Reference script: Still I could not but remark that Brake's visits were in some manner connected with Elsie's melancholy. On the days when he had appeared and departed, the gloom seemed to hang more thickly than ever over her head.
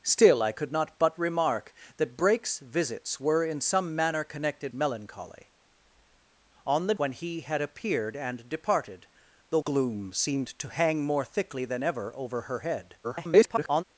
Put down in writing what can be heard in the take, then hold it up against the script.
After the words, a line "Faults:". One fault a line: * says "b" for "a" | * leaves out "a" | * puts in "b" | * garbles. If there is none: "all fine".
Still I could not but remark that Brake's visits were in some manner connected melancholy. On the when he had appeared and departed, the gloom seemed to hang more thickly than ever over her head. [garbled]
Faults:
* leaves out "with Elsie's"
* leaves out "days"
* garbles